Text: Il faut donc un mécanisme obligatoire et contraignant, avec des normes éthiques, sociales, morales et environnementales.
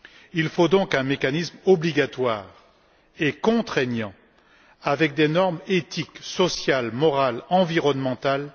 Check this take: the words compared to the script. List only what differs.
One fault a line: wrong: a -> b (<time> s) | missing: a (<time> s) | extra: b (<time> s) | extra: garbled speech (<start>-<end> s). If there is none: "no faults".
no faults